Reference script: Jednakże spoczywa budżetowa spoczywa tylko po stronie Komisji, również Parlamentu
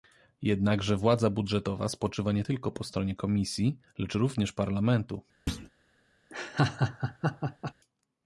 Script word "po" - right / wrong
right